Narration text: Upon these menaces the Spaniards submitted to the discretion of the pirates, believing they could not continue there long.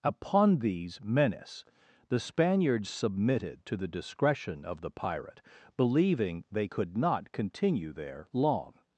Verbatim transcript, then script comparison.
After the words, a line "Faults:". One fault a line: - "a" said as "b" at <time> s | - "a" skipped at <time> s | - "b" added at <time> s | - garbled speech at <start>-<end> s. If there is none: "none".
Upon these menace the Spaniards submitted to the discretion of the pirate, believing they could not continue there long.
Faults:
- "menaces" said as "menace" at 1.0 s
- "pirates" said as "pirate" at 4.9 s